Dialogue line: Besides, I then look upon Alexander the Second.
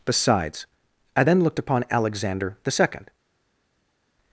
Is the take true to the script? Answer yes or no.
no